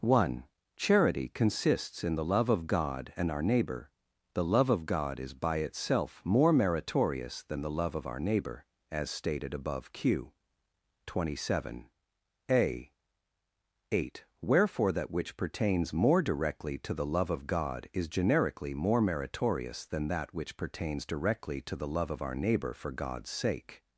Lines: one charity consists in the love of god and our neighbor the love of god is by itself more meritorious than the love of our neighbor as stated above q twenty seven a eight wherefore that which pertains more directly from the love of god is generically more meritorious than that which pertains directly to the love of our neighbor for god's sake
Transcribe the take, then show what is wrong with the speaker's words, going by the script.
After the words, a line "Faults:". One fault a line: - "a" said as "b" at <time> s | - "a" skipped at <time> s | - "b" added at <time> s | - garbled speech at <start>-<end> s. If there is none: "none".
one charity consists in the love of god and our neighbor the love of god is by itself more meritorious than the love of our neighbor as stated above q twenty seven a eight wherefore that which pertains more directly to the love of god is generically more meritorious than that which pertains directly to the love of our neighbor for god's sake
Faults:
- "from" said as "to" at 16.8 s